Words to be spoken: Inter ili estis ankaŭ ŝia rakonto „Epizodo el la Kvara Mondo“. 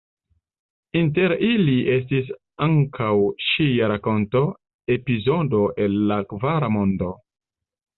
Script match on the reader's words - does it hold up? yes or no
yes